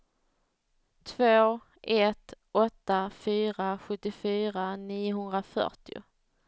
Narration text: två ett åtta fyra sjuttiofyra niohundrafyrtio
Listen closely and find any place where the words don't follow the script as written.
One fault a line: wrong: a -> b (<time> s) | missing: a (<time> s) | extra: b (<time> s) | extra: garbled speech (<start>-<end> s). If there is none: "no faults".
no faults